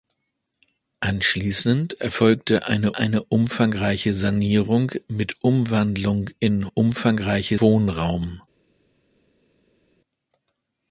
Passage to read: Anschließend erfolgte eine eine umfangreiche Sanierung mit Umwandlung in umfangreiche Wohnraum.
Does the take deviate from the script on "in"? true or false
false